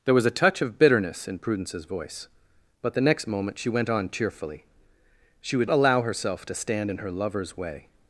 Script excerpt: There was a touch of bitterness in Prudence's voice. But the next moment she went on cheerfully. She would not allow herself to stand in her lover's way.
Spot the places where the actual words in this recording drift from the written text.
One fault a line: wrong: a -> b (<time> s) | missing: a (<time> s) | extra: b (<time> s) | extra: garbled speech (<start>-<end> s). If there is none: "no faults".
missing: not (5.7 s)